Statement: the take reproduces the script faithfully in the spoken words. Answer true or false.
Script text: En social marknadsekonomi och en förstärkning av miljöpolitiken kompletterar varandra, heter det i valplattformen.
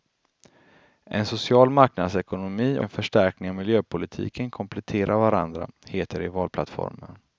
false